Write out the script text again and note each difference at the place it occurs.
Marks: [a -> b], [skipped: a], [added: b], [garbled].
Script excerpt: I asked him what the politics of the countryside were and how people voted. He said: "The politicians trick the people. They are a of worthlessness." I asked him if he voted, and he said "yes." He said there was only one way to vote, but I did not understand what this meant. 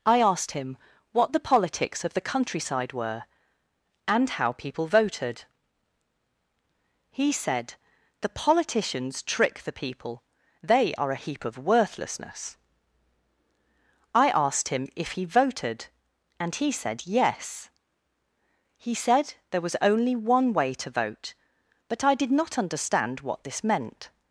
I asked him what the politics of the countryside were and how people voted. He said: "The politicians trick the people. They are a [added: heap] of worthlessness." I asked him if he voted, and he said "yes." He said there was only one way to vote, but I did not understand what this meant.